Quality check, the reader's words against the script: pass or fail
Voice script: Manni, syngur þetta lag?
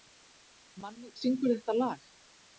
pass